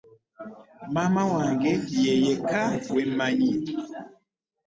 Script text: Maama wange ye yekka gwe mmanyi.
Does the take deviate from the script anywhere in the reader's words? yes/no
no